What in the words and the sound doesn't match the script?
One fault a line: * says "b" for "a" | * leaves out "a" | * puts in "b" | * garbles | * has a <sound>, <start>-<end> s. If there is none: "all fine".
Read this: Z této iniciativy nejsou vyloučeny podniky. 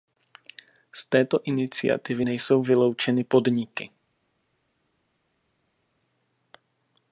all fine